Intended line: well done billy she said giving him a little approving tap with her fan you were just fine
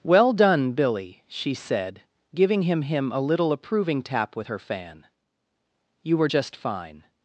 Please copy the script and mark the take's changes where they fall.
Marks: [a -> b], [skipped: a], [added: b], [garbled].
well done billy she said giving him [added: him] a little approving tap with her fan you were just fine